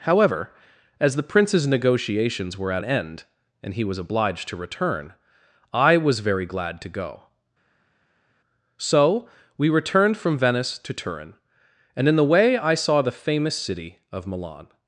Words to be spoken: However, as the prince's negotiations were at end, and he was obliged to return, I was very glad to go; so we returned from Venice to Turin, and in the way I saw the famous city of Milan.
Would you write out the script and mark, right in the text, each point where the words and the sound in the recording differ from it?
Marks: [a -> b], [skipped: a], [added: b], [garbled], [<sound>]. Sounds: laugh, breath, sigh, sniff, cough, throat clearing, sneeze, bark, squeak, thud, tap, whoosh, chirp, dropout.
However, as the prince's negotiations were at end, and he was obliged to return, I was very glad to go; so we returned from Venice to Turin, and in the way I saw the famous city of Milan.